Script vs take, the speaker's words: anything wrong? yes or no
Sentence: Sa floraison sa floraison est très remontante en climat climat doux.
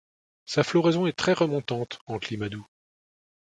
yes